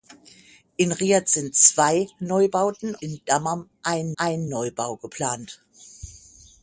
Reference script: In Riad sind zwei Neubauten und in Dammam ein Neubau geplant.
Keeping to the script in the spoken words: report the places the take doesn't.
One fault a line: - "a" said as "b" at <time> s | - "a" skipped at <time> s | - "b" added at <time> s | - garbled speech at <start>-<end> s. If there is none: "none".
- "und" skipped at 3.0 s
- "ein" added at 4.2 s